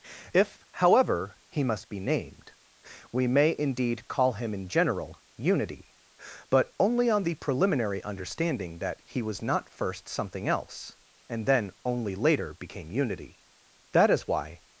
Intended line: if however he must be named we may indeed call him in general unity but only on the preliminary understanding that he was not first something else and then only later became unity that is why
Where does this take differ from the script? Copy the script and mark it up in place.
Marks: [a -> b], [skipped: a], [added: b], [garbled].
if however he must be named we may indeed call him in general unity but only on the preliminary understanding that he was not first something else and then only later became unity that is why